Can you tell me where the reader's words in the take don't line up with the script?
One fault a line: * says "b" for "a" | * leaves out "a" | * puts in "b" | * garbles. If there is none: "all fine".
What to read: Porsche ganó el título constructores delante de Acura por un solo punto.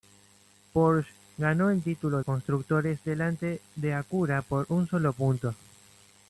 all fine